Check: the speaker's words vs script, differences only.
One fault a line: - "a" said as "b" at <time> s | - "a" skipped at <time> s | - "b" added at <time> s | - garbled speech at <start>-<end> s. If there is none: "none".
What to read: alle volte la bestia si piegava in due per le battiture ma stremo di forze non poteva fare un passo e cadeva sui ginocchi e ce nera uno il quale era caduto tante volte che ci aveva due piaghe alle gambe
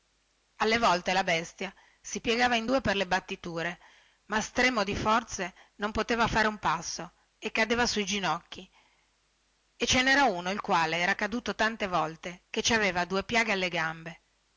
none